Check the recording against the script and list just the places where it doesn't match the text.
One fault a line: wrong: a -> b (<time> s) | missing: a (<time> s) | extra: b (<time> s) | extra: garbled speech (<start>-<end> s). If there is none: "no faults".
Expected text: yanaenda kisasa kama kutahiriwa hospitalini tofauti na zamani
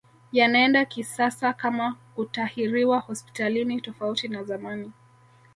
no faults